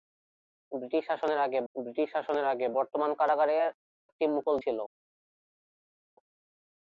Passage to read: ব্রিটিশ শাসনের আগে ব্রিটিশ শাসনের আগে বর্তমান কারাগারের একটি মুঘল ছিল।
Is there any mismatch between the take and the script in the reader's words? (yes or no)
no